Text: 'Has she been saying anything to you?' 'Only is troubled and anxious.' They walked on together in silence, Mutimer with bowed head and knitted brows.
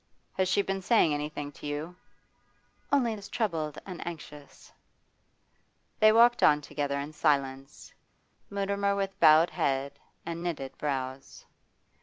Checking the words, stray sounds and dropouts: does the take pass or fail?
pass